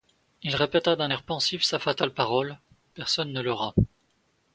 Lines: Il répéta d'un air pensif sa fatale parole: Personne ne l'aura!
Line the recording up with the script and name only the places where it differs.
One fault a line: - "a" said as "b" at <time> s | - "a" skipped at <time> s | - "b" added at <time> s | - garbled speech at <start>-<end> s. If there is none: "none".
none